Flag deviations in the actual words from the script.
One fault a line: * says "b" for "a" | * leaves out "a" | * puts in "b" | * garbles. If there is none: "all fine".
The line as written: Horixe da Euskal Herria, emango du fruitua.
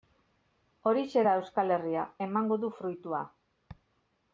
all fine